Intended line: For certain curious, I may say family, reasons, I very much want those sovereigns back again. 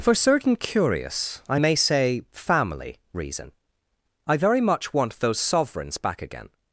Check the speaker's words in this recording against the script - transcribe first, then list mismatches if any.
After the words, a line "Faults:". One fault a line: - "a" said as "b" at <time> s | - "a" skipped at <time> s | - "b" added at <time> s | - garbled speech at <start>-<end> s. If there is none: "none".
For certain curious, I may say family, reason, I very much want those sovereigns back again.
Faults:
- "reasons" said as "reason" at 3.1 s